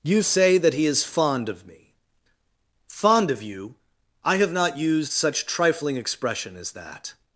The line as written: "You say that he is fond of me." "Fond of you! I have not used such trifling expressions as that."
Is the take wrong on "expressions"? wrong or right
wrong